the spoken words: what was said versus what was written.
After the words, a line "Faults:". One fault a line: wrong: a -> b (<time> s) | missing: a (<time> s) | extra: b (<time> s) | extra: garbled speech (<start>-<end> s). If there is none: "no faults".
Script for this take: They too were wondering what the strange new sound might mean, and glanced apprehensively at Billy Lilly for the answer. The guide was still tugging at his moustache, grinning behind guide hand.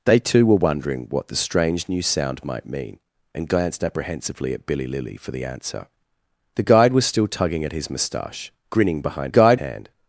They too were wondering what the strange new sound might mean, and glanced apprehensively at Billy Lilly for the answer. The guide was still tugging at his moustache, grinning behind guide hand.
Faults:
no faults